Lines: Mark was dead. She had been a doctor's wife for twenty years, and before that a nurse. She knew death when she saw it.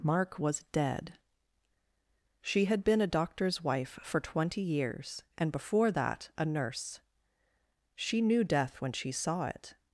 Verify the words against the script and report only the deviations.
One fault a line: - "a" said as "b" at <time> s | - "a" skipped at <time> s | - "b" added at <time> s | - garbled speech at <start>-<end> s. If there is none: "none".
none